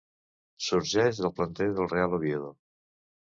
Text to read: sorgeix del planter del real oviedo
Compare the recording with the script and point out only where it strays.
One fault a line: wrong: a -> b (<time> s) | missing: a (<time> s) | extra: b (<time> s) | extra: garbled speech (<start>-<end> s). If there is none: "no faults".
no faults